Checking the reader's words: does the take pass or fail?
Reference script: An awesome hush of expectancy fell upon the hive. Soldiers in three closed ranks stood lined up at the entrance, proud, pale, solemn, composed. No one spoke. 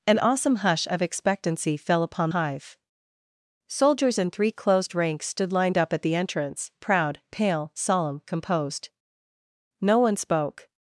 fail